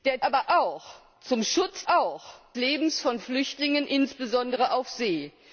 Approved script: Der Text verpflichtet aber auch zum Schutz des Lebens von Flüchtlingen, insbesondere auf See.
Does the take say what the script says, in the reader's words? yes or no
no